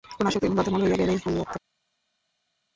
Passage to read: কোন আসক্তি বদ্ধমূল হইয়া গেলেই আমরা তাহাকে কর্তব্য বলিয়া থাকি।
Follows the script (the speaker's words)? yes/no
no